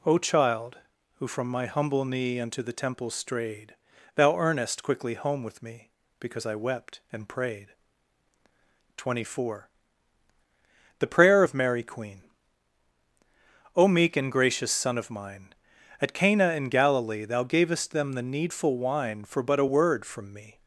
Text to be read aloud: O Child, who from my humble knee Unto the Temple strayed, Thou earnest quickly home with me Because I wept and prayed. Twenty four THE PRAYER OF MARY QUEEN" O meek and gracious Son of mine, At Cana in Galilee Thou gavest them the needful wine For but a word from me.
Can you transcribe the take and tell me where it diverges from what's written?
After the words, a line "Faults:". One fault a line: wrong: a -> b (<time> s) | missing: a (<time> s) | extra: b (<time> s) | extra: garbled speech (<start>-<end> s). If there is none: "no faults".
O Child, who from my humble knee Unto the Temple strayed, Thou earnest quickly home with me Because I wept and prayed. Twenty four THE PRAYER OF MARY QUEEN" O meek and gracious Son of mine, At Cana in Galilee Thou gavest them the needful wine For but a word from me.
Faults:
no faults